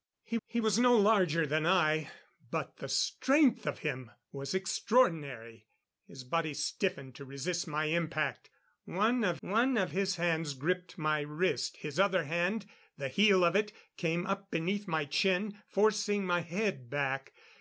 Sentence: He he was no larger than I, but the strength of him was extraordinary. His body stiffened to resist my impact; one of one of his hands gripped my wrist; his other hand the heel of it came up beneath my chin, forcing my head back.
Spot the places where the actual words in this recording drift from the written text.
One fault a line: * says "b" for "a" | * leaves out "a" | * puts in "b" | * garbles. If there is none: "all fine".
all fine